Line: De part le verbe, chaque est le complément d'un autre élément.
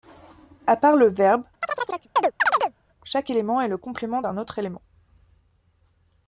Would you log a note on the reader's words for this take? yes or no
yes